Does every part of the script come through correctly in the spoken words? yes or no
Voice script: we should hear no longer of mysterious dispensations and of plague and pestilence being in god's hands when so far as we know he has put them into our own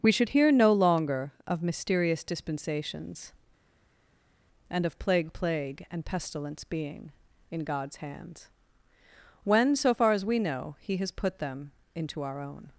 no